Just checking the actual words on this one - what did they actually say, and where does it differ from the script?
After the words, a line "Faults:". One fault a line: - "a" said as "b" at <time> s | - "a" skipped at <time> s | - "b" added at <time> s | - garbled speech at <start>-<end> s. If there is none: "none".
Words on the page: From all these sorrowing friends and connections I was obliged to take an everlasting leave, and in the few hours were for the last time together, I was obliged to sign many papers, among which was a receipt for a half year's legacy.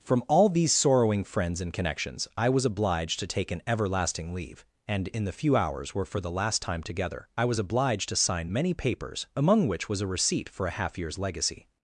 From all these sorrowing friends and connections I was obliged to take an everlasting leave, and in the few hours were for the last time together, I was obliged to sign many papers, among which was a receipt for a half year's legacy.
Faults:
none